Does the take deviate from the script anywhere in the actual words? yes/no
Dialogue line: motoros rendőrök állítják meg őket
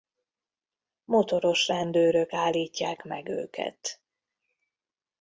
no